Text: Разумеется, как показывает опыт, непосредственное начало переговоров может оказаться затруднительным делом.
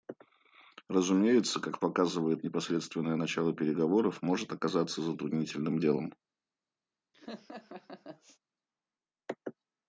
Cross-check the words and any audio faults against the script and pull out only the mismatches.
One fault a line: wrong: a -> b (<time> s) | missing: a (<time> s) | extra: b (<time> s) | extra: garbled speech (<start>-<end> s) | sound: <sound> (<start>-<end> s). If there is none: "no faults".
missing: опыт (2.4 s)
sound: laugh (7.1-8.4 s)